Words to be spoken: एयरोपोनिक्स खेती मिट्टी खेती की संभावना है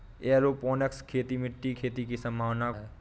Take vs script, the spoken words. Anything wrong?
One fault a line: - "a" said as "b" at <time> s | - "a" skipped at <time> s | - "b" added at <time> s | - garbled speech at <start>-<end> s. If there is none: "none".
none